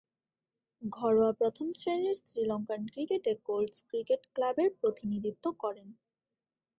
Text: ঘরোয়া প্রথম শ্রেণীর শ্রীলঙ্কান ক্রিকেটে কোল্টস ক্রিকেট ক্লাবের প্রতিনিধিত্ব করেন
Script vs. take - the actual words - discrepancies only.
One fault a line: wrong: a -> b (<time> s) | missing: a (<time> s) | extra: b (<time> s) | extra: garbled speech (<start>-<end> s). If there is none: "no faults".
no faults